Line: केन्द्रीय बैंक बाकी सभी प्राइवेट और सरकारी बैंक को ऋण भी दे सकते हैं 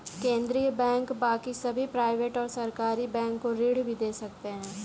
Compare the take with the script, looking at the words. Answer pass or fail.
pass